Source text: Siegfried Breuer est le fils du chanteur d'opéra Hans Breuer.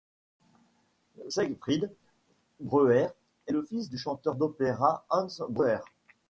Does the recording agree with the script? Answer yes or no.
yes